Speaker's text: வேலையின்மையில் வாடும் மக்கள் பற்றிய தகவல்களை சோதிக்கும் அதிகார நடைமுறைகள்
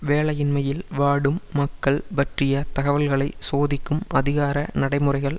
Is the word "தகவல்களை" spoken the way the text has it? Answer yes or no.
yes